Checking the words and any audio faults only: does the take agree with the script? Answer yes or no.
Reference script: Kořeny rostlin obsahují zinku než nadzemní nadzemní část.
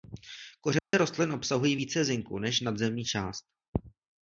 no